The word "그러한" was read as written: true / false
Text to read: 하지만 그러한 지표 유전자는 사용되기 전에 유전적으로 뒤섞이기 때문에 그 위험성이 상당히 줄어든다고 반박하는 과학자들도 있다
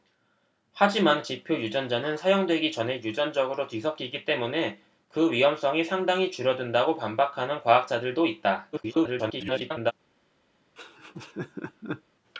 false